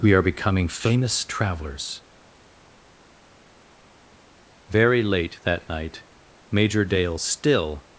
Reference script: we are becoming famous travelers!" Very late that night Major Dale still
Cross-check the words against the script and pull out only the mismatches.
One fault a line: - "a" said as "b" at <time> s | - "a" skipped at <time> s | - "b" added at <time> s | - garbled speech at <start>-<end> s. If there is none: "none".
none